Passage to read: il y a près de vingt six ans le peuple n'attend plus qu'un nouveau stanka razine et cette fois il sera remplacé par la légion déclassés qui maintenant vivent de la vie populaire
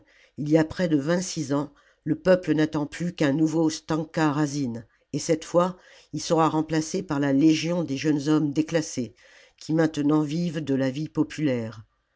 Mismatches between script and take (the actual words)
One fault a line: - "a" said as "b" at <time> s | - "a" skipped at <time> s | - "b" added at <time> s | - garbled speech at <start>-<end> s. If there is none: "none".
- "des jeunes hommes" added at 7.8 s